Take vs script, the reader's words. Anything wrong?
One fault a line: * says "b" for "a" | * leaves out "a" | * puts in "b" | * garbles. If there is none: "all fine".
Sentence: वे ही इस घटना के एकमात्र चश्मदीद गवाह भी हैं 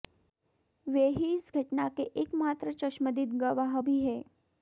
all fine